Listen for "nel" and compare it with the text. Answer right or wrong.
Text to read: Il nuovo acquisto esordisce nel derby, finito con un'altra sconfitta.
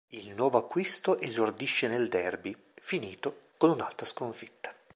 right